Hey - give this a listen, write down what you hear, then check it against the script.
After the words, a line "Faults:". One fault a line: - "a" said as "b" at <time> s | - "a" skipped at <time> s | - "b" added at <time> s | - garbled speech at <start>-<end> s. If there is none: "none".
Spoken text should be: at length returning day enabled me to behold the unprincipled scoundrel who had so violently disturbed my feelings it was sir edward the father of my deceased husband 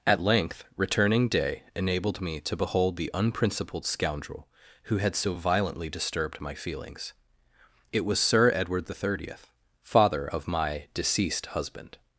at length returning day enabled me to behold the unprincipled scoundrel who had so violently disturbed my feelings it was sir edward the thirtieth father of my deceased husband
Faults:
- "thirtieth" added at 8.9 s